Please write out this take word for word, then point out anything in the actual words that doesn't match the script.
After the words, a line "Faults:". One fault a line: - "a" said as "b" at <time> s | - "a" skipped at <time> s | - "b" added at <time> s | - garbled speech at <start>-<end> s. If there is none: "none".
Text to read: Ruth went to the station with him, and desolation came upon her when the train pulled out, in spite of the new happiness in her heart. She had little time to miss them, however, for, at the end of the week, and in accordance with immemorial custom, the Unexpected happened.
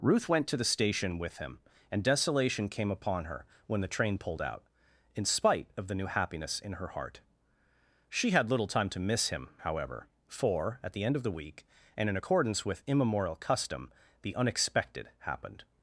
Ruth went to the station with him, and desolation came upon her when the train pulled out, in spite of the new happiness in her heart. She had little time to miss him, however, for, at the end of the week, and in accordance with immemorial custom, the Unexpected happened.
Faults:
- "them" said as "him" at 9.3 s